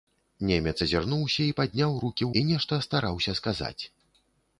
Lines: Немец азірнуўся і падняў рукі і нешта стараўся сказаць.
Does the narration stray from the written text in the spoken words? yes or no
no